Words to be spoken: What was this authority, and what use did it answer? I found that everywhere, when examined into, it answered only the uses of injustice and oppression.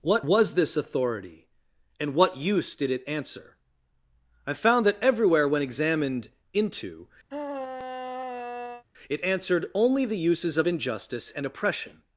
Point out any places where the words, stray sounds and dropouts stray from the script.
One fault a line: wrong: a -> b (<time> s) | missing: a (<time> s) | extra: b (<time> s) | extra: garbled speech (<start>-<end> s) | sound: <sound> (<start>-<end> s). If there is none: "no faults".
sound: sigh (7.3-8.8 s)